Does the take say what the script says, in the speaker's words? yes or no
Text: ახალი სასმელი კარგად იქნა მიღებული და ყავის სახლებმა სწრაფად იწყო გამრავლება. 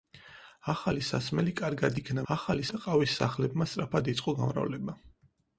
no